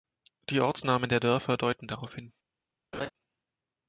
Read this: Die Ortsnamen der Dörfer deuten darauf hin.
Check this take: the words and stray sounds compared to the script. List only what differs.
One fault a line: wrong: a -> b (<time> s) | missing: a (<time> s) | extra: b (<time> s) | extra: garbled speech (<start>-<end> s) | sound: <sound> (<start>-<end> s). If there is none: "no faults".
sound: laugh (2.9-3.1 s)